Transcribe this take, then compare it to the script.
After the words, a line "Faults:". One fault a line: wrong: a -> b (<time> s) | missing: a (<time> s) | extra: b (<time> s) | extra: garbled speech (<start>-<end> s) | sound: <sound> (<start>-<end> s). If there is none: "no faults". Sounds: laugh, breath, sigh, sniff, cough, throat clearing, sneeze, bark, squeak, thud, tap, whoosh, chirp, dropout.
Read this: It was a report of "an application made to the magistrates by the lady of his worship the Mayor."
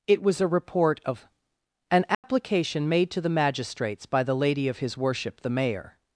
It was a report of "an application made to the magistrates by the lady of his worship the Mayor."
Faults:
sound: dropout (2.1-2.2 s)